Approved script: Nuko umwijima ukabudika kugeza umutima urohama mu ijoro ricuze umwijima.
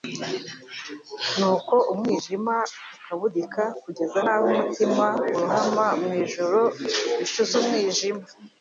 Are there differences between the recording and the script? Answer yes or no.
yes